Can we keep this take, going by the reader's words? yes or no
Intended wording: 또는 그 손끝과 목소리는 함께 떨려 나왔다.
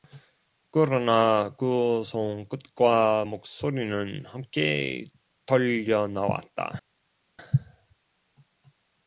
no